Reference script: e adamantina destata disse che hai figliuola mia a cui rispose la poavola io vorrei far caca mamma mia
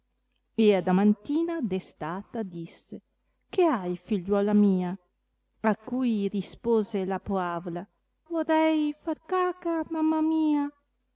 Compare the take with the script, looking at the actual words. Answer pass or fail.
fail